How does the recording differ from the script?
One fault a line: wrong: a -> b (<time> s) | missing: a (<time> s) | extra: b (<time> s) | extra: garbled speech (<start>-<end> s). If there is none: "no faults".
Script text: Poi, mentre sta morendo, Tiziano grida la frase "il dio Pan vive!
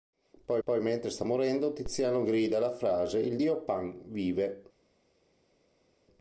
extra: poi (0.6 s)